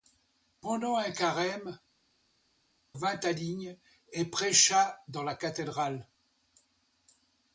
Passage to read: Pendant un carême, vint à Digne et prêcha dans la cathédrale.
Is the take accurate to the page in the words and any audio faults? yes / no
yes